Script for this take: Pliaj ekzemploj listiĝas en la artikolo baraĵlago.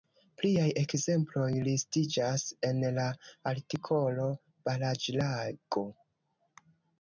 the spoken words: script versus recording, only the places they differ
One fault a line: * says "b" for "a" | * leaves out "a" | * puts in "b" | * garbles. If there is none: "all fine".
all fine